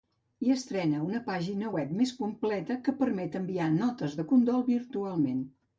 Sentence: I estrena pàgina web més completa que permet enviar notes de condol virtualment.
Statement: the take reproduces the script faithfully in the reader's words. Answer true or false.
false